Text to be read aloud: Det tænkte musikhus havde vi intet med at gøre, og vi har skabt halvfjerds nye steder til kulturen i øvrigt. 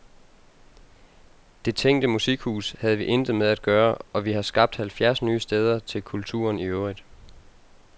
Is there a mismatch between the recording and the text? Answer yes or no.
no